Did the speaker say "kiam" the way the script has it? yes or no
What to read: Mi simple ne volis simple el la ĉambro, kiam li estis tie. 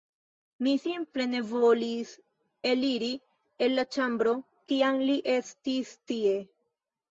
yes